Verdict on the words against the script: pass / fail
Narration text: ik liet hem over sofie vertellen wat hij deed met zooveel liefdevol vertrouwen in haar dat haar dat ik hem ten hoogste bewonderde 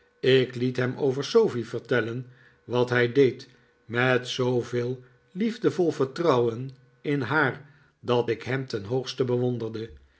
fail